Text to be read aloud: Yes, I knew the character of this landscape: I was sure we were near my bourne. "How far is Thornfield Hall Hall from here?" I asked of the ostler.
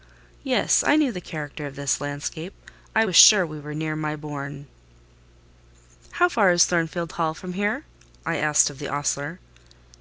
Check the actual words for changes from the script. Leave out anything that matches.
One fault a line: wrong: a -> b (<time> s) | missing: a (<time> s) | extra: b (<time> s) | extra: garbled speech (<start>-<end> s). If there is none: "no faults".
missing: Hall (7.3 s)